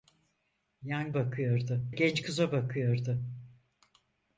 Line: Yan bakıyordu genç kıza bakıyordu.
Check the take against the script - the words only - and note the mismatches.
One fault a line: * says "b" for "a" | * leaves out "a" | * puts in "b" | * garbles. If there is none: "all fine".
all fine